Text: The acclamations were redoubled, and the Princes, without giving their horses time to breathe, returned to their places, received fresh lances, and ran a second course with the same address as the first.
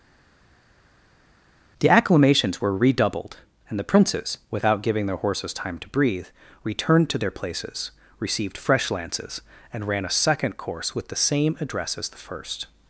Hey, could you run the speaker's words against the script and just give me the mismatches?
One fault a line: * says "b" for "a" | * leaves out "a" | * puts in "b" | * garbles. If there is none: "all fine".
all fine